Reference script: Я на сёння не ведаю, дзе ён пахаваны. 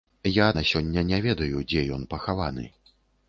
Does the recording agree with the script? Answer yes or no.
yes